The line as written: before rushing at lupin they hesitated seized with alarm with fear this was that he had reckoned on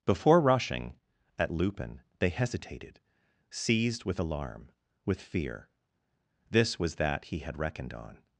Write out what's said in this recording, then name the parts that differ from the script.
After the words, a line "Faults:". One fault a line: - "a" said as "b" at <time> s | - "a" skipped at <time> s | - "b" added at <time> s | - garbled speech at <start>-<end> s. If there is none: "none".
before rushing at lupin they hesitated seized with alarm with fear this was that he had reckoned on
Faults:
none